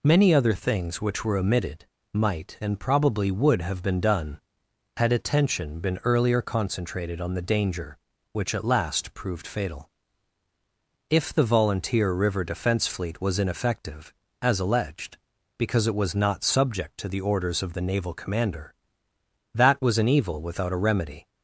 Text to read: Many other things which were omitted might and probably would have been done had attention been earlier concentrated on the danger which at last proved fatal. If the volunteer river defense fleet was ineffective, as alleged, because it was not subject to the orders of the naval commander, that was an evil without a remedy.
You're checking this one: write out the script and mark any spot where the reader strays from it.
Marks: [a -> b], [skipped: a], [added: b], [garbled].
Many other things which were omitted might and probably would have been done had attention been earlier concentrated on the danger which at last proved fatal. If the volunteer river defense fleet was ineffective, as alleged, because it was not subject to the orders of the naval commander, that was an evil without a remedy.